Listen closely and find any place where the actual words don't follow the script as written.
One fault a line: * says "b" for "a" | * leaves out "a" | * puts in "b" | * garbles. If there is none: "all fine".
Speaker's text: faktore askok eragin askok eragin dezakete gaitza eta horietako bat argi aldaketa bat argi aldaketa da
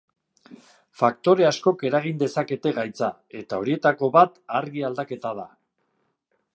* leaves out "askok eragin"
* leaves out "bat argi aldaketa"